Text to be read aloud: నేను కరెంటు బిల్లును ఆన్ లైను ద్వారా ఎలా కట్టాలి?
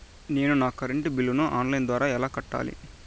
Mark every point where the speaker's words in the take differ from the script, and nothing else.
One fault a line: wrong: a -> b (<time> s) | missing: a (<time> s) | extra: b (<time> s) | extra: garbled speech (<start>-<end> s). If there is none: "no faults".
extra: నా (0.5 s)